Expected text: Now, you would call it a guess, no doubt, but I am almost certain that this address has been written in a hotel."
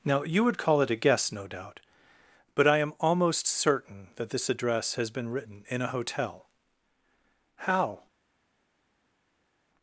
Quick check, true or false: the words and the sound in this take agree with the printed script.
false